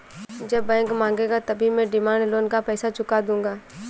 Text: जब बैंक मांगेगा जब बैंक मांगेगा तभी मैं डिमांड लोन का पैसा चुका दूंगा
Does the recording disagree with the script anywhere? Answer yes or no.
yes